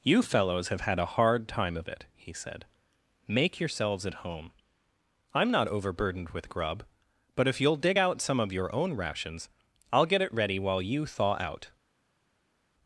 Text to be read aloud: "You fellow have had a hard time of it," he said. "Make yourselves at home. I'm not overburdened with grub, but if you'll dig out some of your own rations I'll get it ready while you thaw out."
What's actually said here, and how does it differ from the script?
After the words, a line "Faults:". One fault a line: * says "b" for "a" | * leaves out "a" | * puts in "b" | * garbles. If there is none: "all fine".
"You fellows have had a hard time of it," he said. "Make yourselves at home. I'm not overburdened with grub, but if you'll dig out some of your own rations I'll get it ready while you thaw out."
Faults:
* says "fellows" for "fellow"